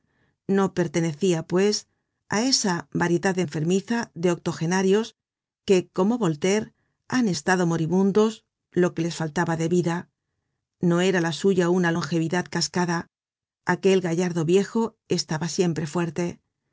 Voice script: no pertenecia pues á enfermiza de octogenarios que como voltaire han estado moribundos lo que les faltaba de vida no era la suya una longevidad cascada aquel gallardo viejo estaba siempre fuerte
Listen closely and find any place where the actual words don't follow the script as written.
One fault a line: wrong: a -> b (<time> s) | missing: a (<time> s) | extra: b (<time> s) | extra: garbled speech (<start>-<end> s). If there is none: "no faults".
extra: esa variedad (2.5 s)